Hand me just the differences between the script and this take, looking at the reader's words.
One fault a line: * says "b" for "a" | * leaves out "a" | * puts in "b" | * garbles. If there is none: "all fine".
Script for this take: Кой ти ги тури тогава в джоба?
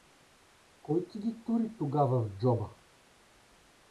all fine